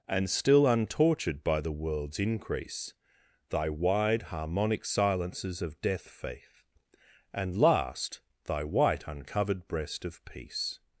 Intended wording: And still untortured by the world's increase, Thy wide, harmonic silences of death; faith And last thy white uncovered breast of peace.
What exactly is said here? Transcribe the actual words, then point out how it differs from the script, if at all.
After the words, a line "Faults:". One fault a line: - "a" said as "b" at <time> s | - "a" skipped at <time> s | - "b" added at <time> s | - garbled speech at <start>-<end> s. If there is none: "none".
And still untortured by the world's increase, Thy wide, harmonic silences of death; faith And last thy white uncovered breast of peace.
Faults:
none